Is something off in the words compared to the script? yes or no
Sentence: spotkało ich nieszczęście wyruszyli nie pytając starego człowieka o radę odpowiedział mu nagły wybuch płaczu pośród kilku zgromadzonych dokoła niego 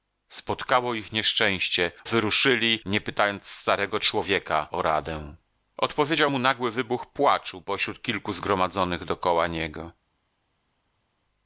no